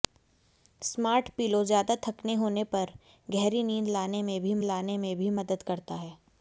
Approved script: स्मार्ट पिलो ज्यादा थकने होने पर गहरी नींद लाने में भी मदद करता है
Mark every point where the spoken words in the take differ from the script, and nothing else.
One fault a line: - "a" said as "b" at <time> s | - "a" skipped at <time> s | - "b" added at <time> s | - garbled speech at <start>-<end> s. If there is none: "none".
- "लाने में भी" added at 4.6 s